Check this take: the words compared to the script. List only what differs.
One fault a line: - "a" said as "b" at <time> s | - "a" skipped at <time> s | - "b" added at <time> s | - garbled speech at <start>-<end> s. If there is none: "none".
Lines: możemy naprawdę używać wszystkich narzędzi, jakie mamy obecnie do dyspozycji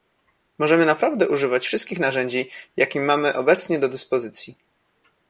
none